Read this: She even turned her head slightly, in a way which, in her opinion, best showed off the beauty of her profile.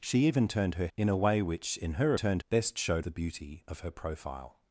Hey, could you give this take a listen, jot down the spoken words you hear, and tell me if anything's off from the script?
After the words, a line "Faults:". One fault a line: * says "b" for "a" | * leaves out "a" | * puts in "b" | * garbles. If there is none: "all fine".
She even turned her in a way which, in her turned, best showed the beauty of her profile.
Faults:
* leaves out "head slightly"
* says "turned" for "opinion"
* leaves out "off"